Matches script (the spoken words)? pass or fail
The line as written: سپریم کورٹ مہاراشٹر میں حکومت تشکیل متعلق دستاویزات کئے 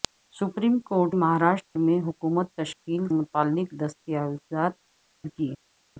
pass